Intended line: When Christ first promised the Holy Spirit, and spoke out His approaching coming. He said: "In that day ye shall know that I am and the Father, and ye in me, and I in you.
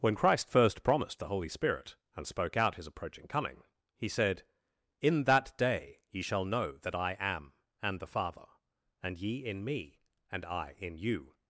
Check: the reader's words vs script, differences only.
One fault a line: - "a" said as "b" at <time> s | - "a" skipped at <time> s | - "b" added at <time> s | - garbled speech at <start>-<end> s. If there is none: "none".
none